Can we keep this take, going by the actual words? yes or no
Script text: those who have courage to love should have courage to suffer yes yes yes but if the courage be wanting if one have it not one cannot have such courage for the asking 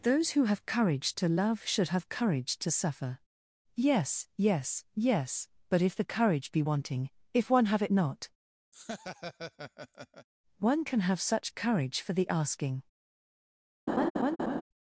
no